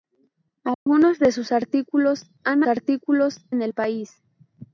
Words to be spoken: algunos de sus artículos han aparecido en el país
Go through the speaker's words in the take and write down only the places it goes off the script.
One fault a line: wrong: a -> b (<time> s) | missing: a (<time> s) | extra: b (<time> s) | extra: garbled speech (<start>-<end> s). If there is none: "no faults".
wrong: aparecido -> artículos (2.7 s)